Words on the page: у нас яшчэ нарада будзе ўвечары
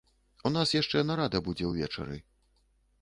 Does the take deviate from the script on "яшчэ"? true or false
false